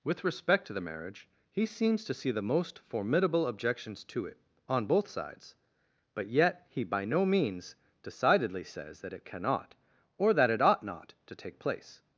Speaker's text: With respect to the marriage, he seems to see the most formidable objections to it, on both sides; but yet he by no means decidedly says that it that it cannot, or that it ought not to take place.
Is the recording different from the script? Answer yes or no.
yes